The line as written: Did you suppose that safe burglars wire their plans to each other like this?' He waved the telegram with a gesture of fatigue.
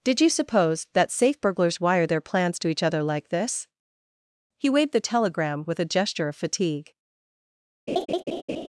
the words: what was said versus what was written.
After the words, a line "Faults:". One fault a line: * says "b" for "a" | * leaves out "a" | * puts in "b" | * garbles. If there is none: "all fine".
Did you suppose that safe burglars wire their plans to each other like this?' He waved the telegram with a gesture of fatigue.
Faults:
all fine